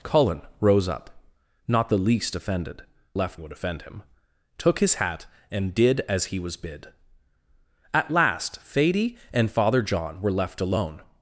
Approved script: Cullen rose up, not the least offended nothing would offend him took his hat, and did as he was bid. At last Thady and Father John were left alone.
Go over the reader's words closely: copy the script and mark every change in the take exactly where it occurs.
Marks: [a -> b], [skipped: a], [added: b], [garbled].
Cullen rose up, not the least offended [nothing -> left] would offend him took his hat, and did as he was bid. At last Thady and Father John were left alone.